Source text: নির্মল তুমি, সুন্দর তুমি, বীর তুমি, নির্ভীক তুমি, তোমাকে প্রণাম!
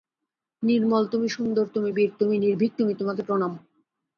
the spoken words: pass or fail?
pass